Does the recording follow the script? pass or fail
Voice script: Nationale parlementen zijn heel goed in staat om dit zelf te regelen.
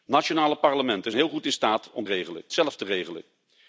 fail